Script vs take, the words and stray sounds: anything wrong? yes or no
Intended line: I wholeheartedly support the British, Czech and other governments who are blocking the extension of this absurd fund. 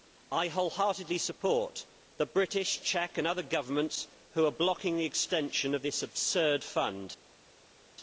no